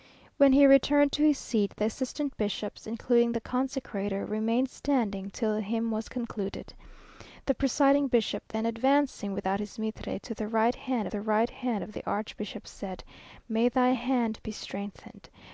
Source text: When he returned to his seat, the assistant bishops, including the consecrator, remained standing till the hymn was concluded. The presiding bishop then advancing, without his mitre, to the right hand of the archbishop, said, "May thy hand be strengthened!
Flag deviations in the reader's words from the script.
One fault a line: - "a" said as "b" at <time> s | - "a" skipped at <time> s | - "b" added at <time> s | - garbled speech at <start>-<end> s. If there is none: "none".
- "the right hand" added at 11.1 s